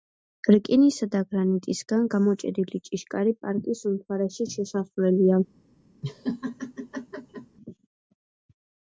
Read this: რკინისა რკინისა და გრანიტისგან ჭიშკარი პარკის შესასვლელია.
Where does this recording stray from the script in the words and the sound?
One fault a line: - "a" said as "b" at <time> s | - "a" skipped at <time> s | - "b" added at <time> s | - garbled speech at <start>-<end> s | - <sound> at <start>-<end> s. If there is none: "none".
- "რკინისა" skipped at 1.1 s
- "გამოჭედილი" added at 2.1 s
- "უმთავრესი" added at 3.9 s
- laugh at 6.0-7.6 s